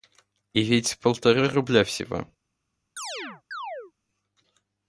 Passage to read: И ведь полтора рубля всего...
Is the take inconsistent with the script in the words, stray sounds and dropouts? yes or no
yes